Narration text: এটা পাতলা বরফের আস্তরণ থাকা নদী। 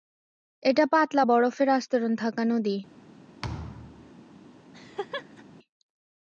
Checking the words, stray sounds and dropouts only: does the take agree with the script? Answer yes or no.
no